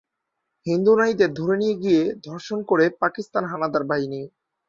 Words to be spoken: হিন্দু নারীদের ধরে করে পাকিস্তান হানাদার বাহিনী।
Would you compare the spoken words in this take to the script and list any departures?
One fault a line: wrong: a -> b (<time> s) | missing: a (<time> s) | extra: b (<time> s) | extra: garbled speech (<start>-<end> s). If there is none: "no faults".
extra: নিয়ে গিয়ে ধর্ষণ (1.6 s)